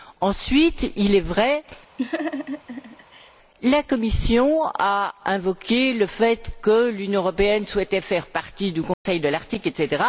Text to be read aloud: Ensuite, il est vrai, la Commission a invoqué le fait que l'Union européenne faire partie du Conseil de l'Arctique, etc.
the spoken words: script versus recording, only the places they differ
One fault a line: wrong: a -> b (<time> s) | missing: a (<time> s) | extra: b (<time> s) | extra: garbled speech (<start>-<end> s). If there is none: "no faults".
extra: souhaitait (7.6 s)